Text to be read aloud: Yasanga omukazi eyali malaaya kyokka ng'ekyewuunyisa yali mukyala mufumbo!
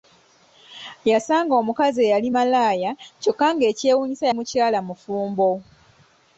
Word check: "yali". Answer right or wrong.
wrong